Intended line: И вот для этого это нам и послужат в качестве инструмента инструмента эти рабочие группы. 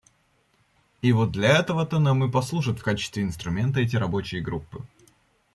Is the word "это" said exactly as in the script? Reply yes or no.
no